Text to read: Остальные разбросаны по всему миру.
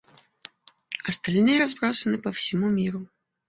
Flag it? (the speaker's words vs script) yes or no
no